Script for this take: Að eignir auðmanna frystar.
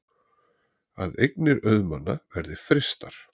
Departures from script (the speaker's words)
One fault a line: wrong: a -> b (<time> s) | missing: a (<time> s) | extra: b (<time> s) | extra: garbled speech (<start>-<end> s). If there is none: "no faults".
extra: verði (2.4 s)